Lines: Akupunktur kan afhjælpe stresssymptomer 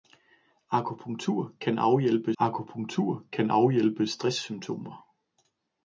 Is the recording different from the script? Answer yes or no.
yes